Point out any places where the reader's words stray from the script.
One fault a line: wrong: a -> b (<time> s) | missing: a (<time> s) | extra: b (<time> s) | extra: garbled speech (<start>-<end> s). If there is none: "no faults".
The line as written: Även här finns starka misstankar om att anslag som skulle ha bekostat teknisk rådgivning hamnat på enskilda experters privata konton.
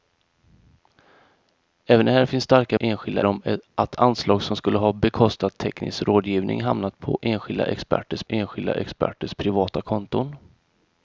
wrong: misstankar -> enskilda (2.8 s)
extra: enskilda experters (8.3 s)